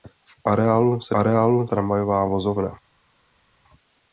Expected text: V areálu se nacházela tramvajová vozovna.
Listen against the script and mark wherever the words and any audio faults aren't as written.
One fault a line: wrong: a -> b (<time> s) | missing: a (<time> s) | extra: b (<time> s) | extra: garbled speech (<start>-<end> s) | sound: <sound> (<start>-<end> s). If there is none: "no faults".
wrong: nacházela -> areálu (1.2 s)